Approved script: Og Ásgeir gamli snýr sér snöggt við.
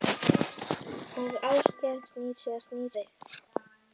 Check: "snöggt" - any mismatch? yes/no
yes